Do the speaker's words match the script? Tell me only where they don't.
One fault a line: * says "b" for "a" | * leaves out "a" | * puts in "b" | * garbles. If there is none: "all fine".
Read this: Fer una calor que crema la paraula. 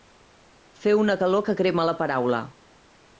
all fine